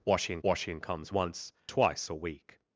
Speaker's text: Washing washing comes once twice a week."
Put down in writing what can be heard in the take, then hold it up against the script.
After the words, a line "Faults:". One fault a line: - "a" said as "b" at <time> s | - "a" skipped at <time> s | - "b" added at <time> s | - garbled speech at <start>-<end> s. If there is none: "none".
Washing washing comes once twice a week."
Faults:
none